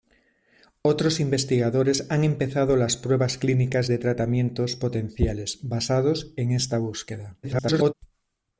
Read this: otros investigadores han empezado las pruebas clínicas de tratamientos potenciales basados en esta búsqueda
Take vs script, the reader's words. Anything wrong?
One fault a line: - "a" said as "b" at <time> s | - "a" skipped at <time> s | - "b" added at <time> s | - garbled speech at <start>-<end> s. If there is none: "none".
- garbled speech at 7.4-7.9 s